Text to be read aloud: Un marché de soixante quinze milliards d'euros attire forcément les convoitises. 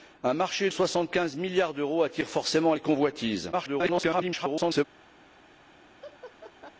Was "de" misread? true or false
true